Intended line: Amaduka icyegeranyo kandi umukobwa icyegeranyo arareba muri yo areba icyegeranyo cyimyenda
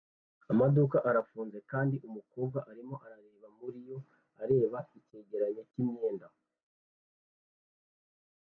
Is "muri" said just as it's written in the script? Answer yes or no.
yes